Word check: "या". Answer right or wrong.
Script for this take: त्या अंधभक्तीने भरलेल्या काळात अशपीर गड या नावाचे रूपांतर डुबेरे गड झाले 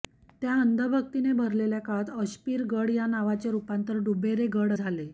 right